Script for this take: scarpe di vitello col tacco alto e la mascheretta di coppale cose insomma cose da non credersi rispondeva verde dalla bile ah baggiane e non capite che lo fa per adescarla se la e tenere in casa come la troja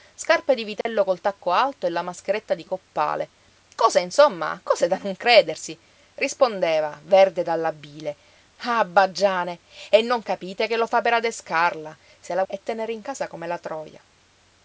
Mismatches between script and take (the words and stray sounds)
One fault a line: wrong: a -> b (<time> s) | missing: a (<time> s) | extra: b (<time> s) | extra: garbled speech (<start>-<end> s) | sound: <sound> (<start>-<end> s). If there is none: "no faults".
sound: dropout (0.8-0.9 s)